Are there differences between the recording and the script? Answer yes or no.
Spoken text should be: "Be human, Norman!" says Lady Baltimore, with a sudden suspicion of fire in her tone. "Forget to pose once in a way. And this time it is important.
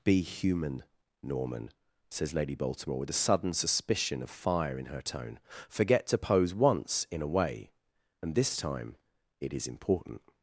no